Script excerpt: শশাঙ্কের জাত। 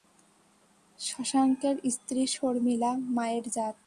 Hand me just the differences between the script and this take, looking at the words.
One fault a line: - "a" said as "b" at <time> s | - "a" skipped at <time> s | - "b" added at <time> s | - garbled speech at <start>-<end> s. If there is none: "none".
- "স্ত্রী শর্মিলা মায়ের" added at 1.9 s